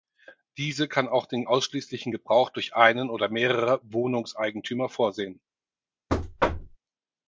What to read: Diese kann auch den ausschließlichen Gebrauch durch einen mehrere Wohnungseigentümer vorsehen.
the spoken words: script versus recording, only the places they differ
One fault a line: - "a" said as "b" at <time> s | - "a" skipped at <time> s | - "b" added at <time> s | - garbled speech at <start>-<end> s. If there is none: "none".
- "oder" added at 3.1 s